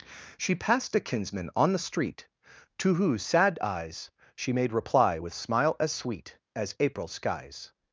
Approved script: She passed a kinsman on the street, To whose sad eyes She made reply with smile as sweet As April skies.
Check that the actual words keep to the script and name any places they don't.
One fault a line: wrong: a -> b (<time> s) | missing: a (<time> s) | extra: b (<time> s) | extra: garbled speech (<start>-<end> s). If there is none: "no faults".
no faults